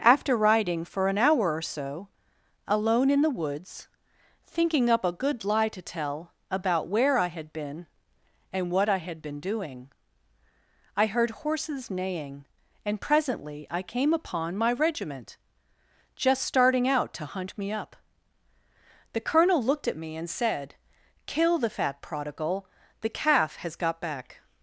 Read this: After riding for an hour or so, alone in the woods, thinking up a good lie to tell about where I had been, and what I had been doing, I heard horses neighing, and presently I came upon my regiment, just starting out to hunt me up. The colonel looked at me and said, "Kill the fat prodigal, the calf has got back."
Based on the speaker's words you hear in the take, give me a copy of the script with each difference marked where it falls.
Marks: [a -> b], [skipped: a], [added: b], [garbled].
After riding for an hour or so, alone in the woods, thinking up a good lie to tell about where I had been, and what I had been doing, I heard horses neighing, and presently I came upon my regiment, just starting out to hunt me up. The colonel looked at me and said, "Kill the fat prodigal, the calf has got back."